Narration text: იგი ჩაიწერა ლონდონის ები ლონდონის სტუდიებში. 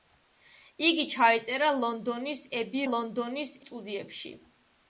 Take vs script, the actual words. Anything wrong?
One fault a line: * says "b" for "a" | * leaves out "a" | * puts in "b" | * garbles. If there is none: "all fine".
all fine